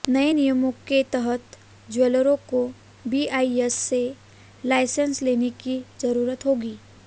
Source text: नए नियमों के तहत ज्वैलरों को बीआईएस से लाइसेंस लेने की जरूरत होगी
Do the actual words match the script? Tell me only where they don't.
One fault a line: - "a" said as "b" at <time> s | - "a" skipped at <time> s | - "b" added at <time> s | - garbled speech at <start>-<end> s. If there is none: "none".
none